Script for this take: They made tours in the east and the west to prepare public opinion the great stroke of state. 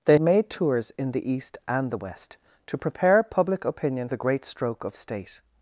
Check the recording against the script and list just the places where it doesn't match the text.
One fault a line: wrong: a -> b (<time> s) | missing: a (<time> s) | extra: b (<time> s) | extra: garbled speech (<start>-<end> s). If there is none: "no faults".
no faults